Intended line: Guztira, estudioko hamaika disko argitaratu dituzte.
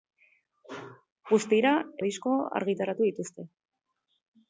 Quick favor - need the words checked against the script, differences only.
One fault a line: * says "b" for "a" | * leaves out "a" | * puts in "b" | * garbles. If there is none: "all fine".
* leaves out "estudioko hamaika"